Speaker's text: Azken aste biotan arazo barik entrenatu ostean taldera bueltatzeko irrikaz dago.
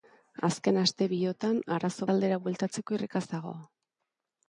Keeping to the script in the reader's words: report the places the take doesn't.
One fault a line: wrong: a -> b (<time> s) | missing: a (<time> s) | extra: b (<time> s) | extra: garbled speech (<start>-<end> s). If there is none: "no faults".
missing: barik entrenatu ostean (2.1 s)